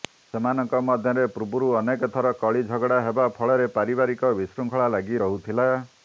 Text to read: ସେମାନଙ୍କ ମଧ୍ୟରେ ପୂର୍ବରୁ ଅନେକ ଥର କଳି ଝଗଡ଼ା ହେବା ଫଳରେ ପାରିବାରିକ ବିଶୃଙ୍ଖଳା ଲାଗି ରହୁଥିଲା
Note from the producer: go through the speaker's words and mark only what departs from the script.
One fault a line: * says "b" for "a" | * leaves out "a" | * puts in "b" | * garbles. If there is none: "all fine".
all fine